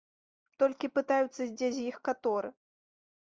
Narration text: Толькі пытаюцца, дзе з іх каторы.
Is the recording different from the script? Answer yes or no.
no